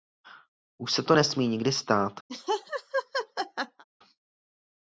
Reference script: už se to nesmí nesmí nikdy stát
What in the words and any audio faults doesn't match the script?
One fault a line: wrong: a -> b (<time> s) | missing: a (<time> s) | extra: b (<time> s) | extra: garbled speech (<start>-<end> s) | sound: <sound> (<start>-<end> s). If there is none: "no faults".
missing: nesmí (1.5 s)
sound: laugh (2.3-3.8 s)